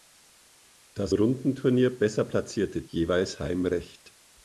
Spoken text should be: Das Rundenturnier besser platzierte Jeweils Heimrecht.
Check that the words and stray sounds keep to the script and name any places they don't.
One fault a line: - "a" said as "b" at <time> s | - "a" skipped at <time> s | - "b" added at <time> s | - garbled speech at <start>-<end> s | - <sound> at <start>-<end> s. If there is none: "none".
none